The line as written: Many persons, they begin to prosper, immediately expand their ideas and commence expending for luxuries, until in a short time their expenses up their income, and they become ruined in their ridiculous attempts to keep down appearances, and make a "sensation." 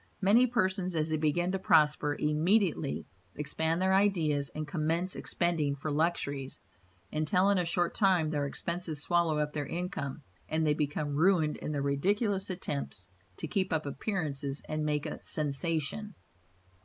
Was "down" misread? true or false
true